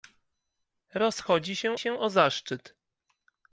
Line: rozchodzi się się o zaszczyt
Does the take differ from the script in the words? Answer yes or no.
no